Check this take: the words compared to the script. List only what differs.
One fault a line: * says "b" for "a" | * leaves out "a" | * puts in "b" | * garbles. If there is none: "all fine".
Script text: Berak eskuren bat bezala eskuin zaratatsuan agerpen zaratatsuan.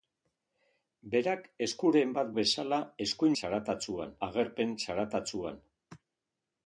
all fine